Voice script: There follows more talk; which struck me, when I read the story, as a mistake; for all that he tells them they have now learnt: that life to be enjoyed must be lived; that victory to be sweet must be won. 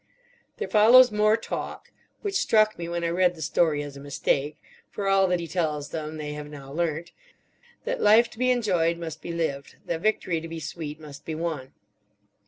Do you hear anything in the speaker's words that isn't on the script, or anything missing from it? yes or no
no